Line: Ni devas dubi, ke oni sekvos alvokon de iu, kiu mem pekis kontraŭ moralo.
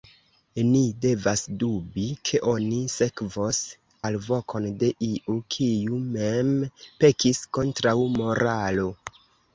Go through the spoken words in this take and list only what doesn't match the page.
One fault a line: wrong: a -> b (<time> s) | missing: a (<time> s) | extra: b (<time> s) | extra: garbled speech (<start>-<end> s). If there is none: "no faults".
no faults